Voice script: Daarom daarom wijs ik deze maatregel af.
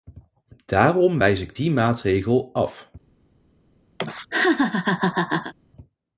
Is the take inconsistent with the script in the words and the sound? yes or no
yes